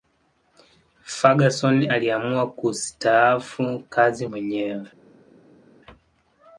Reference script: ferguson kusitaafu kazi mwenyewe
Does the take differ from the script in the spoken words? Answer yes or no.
yes